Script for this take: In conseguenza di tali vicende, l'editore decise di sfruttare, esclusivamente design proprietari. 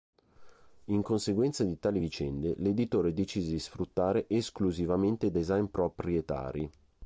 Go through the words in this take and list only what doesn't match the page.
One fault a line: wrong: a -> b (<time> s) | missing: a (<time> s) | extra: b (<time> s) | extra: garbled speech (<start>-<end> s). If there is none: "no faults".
no faults